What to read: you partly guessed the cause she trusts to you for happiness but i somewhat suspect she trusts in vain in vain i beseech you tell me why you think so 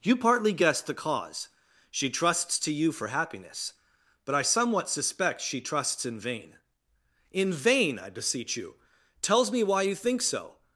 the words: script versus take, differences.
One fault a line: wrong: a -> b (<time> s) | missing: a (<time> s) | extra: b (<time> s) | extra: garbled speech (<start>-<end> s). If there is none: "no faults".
wrong: tell -> tells (9.2 s)